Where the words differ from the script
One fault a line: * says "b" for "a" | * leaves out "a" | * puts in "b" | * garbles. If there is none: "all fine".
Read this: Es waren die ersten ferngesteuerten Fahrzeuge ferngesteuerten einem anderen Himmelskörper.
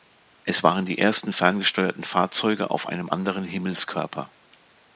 * says "auf" for "ferngesteuerten"